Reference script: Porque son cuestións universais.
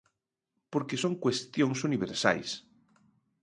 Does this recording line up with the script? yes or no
yes